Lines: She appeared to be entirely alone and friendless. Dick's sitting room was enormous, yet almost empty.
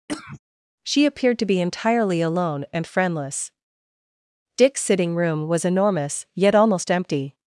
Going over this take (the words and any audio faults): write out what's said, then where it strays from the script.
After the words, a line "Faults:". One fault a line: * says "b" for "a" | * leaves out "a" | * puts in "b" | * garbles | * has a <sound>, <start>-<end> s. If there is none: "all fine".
She appeared to be entirely alone and friendless. Dick's sitting room was enormous, yet almost empty.
Faults:
* has a cough, 0.1-0.4 s